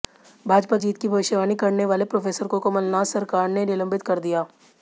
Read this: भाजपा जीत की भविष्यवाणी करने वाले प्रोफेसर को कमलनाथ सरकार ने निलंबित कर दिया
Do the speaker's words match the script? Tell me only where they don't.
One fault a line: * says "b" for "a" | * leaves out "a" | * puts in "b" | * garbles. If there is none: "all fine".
all fine